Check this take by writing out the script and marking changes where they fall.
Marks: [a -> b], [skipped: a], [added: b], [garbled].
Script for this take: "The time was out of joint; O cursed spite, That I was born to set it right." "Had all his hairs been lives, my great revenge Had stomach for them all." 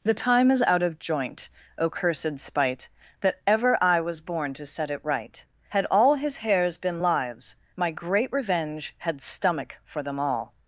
"The time [was -> is] out of joint; O cursed spite, That [added: ever] I was born to set it right." "Had all his hairs been lives, my great revenge Had stomach for them all."